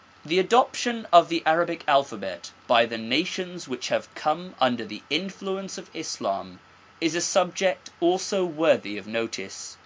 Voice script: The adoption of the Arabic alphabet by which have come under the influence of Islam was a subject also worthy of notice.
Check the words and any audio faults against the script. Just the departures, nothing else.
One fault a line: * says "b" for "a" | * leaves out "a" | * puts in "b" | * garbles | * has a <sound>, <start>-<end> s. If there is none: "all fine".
* puts in "the nations"
* says "is" for "was"